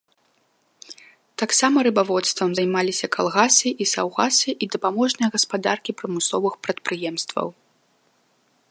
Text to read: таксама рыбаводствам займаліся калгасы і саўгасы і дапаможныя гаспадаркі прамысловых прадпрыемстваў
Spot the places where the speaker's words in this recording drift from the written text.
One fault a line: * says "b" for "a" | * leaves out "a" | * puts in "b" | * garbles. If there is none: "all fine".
all fine